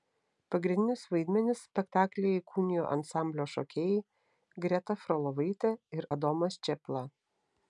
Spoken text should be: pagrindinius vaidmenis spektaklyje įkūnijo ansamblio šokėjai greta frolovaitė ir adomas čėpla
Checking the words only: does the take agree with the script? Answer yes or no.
yes